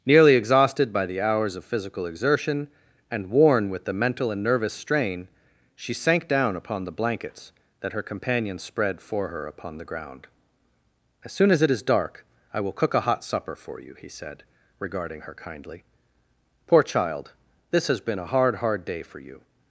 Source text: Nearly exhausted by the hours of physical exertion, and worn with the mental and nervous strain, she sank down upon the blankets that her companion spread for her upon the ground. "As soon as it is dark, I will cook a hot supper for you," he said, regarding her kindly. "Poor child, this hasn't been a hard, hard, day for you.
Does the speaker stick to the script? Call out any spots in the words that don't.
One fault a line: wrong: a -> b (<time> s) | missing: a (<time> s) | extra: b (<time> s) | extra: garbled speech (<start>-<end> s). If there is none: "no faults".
wrong: hasn't -> has (17.9 s)